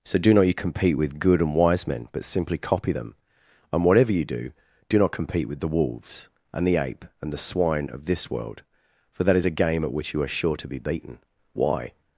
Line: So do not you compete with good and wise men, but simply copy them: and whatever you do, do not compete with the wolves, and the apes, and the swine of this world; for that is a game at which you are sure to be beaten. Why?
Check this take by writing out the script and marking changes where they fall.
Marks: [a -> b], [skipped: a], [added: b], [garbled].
So do not you compete with good and wise men, but simply copy them: and whatever you do, do not compete with the wolves, and the [apes, -> ape] and the swine of this world; for that is a game at which you are sure to be beaten. Why?